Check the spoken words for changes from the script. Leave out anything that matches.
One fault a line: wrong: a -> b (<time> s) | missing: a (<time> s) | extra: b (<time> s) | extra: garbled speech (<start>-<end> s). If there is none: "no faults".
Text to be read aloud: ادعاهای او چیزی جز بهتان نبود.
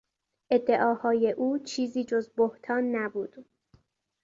no faults